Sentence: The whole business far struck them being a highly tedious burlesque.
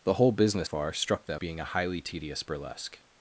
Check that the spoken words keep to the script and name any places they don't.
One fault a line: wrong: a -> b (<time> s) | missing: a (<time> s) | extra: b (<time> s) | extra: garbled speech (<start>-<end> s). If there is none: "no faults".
no faults